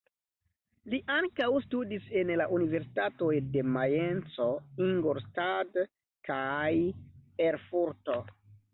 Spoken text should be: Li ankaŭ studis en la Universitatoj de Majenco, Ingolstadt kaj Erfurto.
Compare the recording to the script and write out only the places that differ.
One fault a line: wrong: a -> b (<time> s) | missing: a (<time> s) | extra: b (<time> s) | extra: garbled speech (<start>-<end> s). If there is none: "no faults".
no faults